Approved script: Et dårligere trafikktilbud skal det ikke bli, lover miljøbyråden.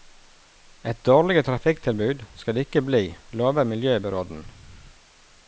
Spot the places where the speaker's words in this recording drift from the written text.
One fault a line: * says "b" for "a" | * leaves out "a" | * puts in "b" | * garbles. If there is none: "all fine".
all fine